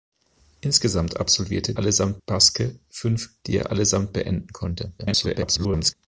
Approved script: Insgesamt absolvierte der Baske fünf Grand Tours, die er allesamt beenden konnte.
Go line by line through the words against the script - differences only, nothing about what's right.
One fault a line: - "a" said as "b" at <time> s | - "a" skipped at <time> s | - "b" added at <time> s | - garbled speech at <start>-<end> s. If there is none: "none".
- "der" said as "allesamt" at 1.8 s
- "Grand Tours" skipped at 3.3 s
- garbled speech at 5.0-5.9 s